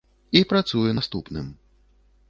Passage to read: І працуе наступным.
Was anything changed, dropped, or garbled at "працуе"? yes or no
no